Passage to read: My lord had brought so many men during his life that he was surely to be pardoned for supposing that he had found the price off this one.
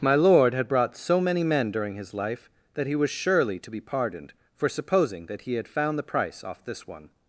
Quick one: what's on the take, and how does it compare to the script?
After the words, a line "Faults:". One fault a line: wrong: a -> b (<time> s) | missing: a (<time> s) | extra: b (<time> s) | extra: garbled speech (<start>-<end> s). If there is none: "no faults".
My lord had brought so many men during his life that he was surely to be pardoned for supposing that he had found the price off this one.
Faults:
no faults